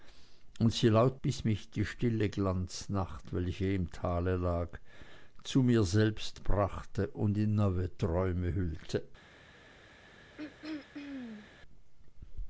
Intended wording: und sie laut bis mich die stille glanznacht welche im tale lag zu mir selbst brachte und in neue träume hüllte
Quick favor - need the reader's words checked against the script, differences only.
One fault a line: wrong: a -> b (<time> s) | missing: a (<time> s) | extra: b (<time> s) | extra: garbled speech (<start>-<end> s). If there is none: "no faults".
no faults